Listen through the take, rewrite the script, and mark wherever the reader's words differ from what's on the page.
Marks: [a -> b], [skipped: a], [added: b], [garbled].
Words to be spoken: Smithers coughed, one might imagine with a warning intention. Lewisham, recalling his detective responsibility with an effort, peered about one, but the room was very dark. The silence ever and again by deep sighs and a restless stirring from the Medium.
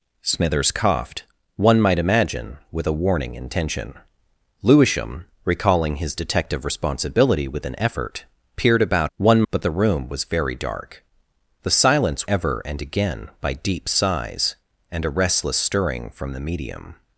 Smithers coughed, one might imagine with a warning intention. Lewisham, recalling his detective responsibility with an effort, peered about one, but the room was very dark. The silence ever and again by deep sighs and a restless stirring from the Medium.